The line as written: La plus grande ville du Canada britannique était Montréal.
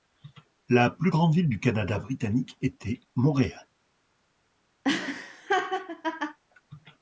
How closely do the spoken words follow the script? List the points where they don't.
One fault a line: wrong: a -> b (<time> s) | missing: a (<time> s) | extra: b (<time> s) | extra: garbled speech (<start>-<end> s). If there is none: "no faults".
no faults